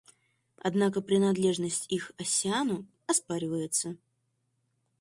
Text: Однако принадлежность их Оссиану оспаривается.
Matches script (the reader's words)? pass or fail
pass